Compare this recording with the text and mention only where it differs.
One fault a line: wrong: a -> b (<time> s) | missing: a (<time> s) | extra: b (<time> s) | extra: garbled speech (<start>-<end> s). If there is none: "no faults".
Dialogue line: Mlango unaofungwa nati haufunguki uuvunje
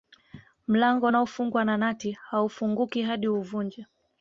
extra: na (1.6 s)
extra: hadi (3.0 s)